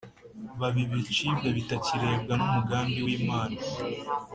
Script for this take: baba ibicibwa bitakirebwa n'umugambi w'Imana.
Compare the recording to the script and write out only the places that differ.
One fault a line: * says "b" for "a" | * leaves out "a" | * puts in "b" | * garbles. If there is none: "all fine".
all fine